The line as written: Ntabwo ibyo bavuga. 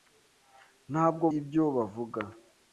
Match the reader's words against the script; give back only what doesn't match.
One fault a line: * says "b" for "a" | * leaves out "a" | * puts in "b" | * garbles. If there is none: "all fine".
all fine